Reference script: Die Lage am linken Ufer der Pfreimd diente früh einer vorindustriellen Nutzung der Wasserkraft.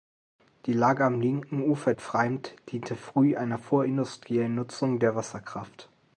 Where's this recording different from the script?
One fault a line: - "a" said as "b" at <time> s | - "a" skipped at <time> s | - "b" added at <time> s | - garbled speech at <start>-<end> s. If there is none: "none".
- "der" skipped at 1.9 s